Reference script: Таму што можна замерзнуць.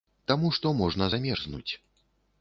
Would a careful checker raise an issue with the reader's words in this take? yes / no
no